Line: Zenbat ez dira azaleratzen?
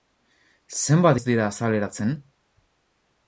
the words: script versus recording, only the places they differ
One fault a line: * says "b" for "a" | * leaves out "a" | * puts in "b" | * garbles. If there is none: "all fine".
all fine